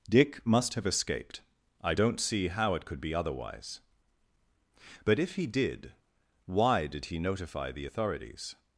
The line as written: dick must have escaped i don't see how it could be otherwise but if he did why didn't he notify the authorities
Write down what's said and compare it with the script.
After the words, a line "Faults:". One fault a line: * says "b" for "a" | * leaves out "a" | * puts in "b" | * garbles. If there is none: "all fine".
dick must have escaped i don't see how it could be otherwise but if he did why did he notify the authorities
Faults:
* says "did" for "didn't"